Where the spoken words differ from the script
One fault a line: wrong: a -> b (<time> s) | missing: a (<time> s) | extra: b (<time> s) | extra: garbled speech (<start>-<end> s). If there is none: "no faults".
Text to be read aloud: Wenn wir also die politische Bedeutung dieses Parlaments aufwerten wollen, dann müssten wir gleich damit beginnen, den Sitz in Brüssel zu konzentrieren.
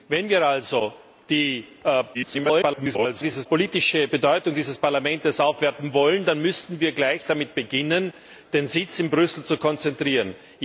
extra: garbled speech (2.1-3.5 s)